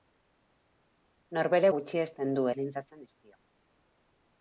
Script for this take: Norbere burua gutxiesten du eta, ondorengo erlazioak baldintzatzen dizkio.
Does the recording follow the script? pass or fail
fail